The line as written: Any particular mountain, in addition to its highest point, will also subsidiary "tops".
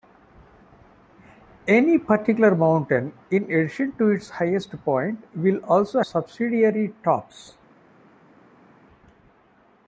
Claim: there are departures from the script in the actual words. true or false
false